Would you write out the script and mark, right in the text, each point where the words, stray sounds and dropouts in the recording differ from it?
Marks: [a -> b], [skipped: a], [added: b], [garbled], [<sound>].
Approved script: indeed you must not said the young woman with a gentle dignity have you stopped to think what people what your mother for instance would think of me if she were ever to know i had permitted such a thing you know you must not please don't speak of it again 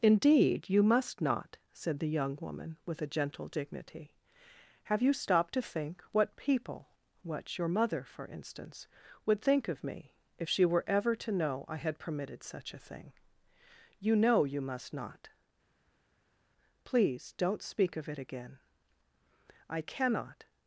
indeed you must not said the young woman with a gentle dignity have you stopped to think what people what your mother for instance would think of me if she were ever to know i had permitted such a thing you know you must not please don't speak of it again [added: i cannot]